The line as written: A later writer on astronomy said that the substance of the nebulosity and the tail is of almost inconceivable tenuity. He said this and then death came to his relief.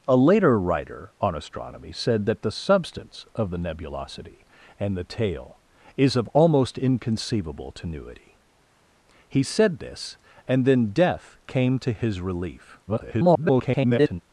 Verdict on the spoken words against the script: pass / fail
fail